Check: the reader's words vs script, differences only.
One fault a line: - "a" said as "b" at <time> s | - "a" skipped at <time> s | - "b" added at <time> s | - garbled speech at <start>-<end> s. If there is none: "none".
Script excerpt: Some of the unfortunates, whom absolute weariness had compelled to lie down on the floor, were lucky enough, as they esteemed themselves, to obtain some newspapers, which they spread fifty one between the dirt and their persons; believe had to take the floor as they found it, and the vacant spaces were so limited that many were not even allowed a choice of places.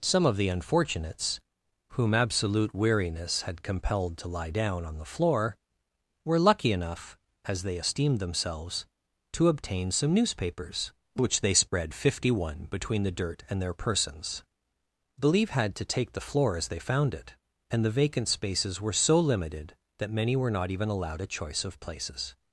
none